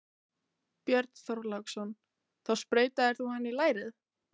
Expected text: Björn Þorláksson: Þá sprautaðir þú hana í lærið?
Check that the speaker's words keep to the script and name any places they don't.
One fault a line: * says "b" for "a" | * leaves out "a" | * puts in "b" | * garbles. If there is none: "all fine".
all fine